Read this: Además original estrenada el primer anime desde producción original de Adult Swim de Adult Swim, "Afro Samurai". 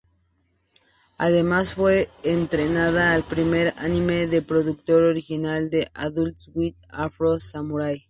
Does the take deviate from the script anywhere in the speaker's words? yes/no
yes